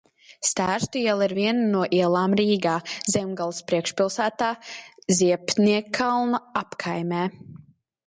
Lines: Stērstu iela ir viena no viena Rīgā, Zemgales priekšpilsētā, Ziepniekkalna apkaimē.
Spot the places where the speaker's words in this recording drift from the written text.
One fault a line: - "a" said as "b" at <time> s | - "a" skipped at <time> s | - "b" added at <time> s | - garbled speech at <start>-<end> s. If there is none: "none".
- "viena" said as "ielām" at 2.0 s